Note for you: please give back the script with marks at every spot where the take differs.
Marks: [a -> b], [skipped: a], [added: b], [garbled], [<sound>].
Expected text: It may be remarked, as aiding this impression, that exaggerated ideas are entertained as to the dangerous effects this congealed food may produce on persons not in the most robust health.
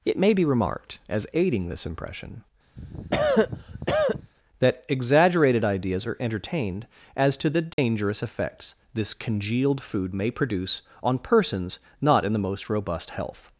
It may be remarked, as aiding this impression, [cough] that exaggerated ideas are entertained as to the dangerous [dropout] effects this congealed food may produce on persons not in the most robust health.